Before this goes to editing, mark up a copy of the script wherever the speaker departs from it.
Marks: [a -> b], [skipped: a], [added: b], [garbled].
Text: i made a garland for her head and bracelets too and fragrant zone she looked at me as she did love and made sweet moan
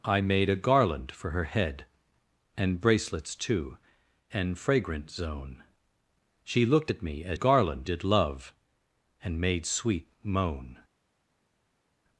i made a garland for her head and bracelets too and fragrant zone she looked at me as [she -> garland] did love and made sweet moan